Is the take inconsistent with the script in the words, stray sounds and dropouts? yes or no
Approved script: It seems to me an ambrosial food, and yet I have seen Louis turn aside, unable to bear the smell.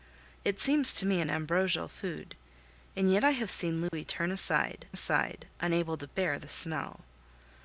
yes